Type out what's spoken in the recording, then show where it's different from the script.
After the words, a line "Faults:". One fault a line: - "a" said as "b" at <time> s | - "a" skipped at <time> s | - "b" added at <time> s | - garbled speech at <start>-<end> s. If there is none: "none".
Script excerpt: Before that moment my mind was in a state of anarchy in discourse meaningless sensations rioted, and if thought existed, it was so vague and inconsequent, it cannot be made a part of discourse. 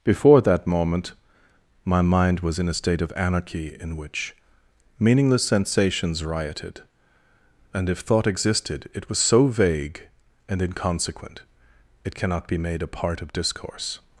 Before that moment my mind was in a state of anarchy in which meaningless sensations rioted, and if thought existed, it was so vague and inconsequent, it cannot be made a part of discourse.
Faults:
- "discourse" said as "which" at 4.0 s